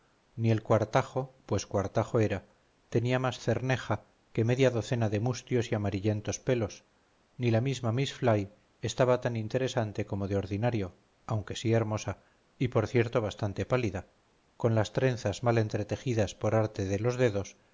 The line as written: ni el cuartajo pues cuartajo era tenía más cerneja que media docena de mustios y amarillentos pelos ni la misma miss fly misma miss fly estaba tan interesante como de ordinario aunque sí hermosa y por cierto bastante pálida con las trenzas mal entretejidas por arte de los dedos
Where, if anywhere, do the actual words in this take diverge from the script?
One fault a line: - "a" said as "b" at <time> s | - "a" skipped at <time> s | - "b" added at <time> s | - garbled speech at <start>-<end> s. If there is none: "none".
- "misma miss fly" skipped at 8.5 s